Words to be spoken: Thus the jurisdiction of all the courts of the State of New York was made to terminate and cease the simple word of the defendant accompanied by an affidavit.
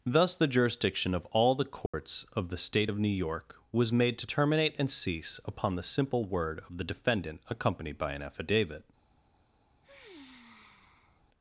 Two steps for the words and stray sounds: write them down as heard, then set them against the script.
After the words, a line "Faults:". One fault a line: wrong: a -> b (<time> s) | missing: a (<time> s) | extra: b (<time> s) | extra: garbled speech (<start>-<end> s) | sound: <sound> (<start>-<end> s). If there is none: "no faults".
Thus the jurisdiction of all the courts of the State of New York was made to terminate and cease upon the simple word of the defendant accompanied by an affidavit.
Faults:
sound: dropout (1.9-1.9 s)
extra: upon (5.5 s)
sound: sigh (9.8-11.2 s)